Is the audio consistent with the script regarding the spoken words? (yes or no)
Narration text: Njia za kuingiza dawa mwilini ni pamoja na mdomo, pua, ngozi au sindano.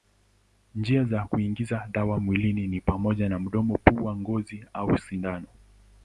yes